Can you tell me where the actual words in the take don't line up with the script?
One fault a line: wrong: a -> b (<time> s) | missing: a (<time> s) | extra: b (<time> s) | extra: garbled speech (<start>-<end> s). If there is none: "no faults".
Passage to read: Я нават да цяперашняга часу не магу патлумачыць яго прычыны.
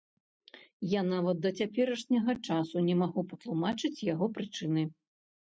no faults